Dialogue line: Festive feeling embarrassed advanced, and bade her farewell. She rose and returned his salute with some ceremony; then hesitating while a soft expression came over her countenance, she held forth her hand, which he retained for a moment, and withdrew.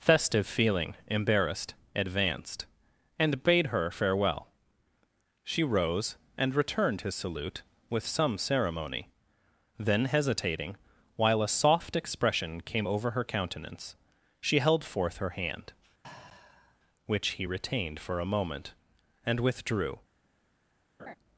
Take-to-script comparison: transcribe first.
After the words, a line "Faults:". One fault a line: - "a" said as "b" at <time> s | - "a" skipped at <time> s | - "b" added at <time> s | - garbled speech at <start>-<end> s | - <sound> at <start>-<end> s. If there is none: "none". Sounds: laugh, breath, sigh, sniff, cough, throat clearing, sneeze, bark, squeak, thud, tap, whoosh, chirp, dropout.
Festive feeling embarrassed advanced, and bade her farewell. She rose and returned his salute with some ceremony; then hesitating while a soft expression came over her countenance, she held forth her hand, which he retained for a moment, and withdrew.
Faults:
- sigh at 16.0-16.8 s
- laugh at 21.0-21.2 s